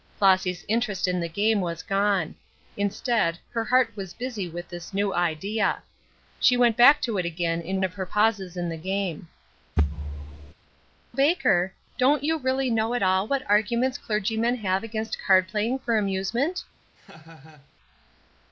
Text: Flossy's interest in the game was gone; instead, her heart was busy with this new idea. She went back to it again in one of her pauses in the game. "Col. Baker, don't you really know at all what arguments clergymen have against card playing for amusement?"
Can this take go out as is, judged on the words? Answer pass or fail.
fail